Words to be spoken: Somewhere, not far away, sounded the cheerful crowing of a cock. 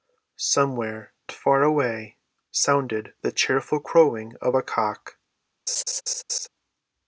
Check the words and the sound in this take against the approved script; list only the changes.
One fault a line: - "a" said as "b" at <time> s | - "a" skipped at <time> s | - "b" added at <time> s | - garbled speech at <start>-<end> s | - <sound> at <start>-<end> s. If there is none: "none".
- "not" skipped at 1.1 s
- laugh at 5.7-6.5 s